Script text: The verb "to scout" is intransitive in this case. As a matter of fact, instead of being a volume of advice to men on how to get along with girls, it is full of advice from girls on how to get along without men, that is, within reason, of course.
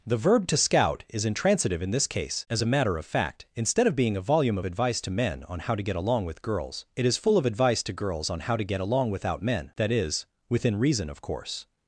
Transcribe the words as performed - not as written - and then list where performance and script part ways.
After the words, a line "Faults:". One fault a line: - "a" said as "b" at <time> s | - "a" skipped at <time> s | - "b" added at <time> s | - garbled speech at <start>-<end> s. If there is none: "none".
The verb "to scout" is intransitive in this case. As a matter of fact, instead of being a volume of advice to men on how to get along with girls, it is full of advice to girls on how to get along without men, that is, within reason, of course.
Faults:
- "from" said as "to" at 7.8 s